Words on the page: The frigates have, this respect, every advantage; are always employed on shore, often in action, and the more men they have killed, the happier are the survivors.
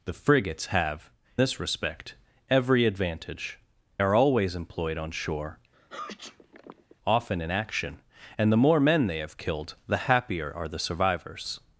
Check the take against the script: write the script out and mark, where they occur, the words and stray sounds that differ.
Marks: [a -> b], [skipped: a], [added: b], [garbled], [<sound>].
The frigates have, this respect, every advantage; are always employed on shore, [sneeze] often in action, and the more men they have killed, the happier are the survivors.